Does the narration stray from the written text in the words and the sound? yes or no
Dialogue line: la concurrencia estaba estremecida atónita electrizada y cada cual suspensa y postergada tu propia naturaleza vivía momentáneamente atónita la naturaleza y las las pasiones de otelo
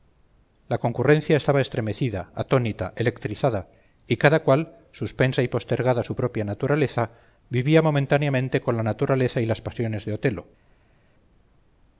yes